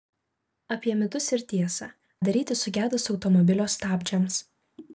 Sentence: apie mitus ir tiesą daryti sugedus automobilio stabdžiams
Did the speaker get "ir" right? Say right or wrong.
right